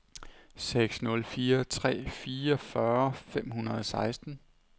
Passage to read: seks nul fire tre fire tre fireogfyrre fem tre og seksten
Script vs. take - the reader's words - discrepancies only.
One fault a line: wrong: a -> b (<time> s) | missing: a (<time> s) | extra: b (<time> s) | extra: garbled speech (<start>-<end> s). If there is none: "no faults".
missing: fire tre (2.1 s)
wrong: tre -> hundrede (3.5 s)